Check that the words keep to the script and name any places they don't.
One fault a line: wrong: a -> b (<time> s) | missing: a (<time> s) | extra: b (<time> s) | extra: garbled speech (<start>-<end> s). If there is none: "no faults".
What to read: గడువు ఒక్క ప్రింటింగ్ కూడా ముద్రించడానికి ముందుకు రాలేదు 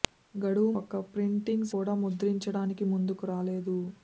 no faults